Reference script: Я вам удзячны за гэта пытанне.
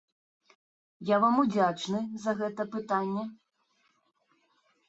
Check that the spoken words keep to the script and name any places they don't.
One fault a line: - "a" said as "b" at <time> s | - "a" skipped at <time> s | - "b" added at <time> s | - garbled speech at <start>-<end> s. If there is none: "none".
none